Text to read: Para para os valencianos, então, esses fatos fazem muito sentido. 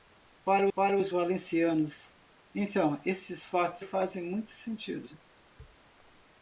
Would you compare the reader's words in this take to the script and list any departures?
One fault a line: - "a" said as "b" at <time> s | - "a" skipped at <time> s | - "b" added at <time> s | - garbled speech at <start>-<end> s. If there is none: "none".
none